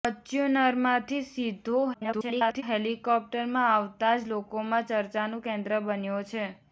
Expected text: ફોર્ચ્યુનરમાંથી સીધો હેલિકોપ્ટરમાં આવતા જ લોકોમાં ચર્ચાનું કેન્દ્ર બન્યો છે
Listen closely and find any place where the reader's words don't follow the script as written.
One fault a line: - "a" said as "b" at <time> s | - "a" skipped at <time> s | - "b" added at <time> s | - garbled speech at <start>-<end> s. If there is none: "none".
- garbled speech at 1.9-2.6 s